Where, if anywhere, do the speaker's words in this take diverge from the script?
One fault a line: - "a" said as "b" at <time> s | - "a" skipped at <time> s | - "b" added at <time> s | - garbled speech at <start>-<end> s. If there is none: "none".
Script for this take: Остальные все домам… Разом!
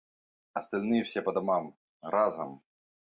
- "по" added at 1.2 s